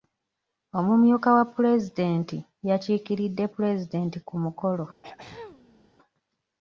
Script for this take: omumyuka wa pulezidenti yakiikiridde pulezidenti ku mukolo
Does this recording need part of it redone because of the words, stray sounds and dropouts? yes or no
yes